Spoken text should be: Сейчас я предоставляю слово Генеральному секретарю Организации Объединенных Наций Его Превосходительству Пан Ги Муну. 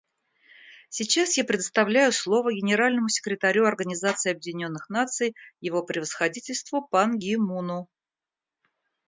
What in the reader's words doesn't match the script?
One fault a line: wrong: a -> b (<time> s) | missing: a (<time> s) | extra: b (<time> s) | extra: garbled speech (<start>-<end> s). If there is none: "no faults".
no faults